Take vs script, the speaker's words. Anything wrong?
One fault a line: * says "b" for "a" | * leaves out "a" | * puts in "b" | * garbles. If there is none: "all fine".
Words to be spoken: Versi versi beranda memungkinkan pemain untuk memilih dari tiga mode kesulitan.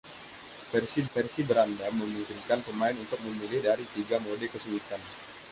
all fine